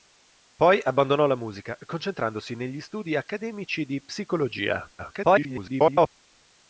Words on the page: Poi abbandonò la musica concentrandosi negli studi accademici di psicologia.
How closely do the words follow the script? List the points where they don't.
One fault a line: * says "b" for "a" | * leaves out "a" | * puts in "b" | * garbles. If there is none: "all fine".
* garbles